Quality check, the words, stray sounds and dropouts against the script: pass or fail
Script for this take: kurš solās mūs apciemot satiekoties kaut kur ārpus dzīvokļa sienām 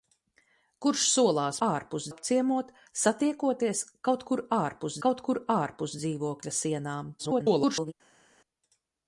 fail